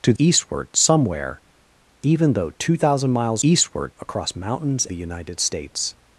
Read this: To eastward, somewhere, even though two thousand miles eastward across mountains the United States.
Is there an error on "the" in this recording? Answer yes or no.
no